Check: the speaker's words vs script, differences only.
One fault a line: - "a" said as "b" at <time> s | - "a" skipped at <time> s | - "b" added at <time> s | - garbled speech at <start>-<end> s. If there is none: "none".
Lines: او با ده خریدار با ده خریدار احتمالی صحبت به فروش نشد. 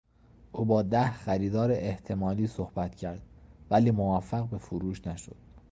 - "با ده خریدار احتمالی صحبت" said as "احتمالی صحبت کرد ولی موفق" at 1.7 s